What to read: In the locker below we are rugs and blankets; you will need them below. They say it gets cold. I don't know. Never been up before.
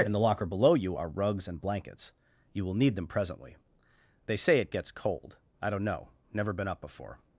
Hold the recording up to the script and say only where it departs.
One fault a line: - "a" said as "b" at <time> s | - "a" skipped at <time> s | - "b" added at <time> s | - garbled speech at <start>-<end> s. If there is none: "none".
- "we" said as "you" at 0.7 s
- "below" said as "presently" at 3.1 s